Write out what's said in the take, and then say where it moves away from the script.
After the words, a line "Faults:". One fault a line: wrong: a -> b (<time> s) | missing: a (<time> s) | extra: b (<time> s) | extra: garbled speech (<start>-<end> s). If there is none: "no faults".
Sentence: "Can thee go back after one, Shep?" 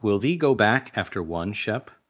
"Will thee go back after one, Shep?"
Faults:
wrong: Can -> Will (0.0 s)